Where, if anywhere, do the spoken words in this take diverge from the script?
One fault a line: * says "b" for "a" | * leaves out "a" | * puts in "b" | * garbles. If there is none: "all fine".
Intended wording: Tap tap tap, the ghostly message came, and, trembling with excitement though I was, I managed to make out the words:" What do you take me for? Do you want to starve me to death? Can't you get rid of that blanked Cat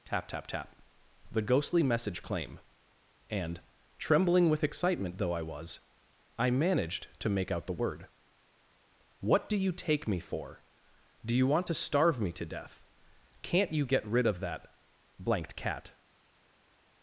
* says "claim" for "came"
* says "word" for "words"